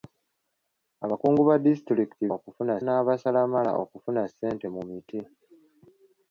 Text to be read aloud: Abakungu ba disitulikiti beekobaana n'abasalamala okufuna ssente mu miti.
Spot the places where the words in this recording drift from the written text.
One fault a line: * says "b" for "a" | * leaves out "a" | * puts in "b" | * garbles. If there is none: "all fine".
* says "okufuna" for "beekobaana"